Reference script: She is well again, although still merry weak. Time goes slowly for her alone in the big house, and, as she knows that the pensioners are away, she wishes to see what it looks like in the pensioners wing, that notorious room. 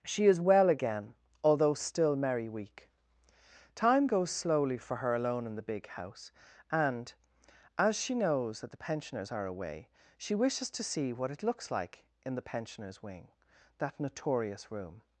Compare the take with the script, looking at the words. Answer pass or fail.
pass